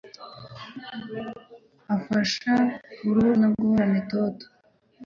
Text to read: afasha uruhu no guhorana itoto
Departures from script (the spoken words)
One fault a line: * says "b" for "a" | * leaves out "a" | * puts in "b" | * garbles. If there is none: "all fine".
all fine